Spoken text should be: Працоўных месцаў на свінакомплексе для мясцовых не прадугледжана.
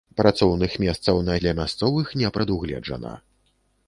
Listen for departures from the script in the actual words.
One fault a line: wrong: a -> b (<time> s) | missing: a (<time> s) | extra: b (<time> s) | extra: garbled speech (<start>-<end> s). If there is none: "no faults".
missing: свінакомплексе (1.4 s)